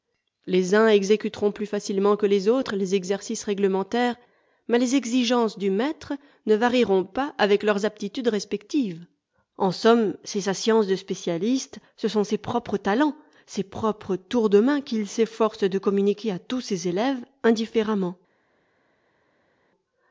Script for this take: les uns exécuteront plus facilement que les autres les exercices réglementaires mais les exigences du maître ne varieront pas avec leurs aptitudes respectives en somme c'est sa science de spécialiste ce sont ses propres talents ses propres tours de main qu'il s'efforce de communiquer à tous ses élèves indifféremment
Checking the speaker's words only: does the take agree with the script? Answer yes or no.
yes